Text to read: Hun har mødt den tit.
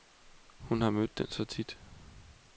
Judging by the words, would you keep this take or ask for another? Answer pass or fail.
fail